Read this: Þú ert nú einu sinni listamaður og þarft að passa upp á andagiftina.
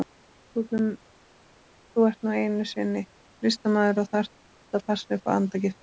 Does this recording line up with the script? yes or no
yes